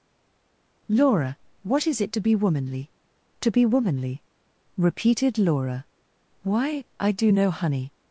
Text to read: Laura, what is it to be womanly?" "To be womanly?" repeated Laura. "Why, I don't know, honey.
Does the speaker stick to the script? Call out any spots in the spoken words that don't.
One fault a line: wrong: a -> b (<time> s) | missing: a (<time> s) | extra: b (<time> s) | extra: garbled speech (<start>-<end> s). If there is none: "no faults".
wrong: don't -> do (7.1 s)